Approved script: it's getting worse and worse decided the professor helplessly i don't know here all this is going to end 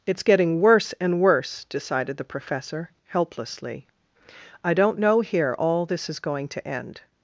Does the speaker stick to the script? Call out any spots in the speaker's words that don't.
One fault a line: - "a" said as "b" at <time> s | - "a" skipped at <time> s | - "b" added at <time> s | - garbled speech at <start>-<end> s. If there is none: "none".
none